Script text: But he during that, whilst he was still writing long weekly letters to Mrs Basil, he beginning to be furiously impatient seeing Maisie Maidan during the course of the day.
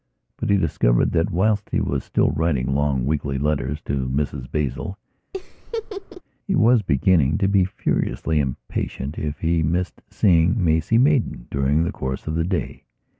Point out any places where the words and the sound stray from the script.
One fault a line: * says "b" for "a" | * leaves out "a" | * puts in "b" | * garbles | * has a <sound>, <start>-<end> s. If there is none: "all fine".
* says "discovered" for "during"
* has a laugh, 5.3-6.2 s
* puts in "was"
* puts in "if he missed"